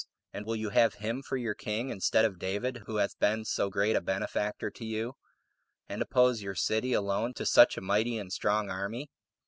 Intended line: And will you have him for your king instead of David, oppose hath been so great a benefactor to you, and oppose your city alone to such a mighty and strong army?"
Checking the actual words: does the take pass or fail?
fail